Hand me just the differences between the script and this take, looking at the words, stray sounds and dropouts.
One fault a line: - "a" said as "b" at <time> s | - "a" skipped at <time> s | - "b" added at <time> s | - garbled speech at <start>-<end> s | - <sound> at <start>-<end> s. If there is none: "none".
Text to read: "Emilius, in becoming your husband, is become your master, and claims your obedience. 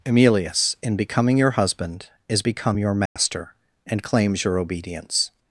- dropout at 3.1-3.2 s